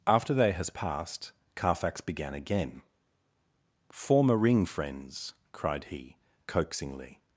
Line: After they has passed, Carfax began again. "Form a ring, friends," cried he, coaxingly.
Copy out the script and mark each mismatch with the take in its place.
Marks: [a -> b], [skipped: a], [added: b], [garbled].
After they has passed, Carfax began again. "Form a ring, friends," cried he, coaxingly.